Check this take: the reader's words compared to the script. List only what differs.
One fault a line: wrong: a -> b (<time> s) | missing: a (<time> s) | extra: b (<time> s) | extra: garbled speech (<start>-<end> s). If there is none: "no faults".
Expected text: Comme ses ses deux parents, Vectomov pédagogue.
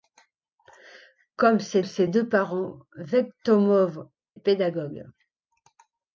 no faults